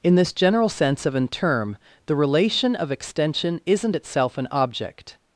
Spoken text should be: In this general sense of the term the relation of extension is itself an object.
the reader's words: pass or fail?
fail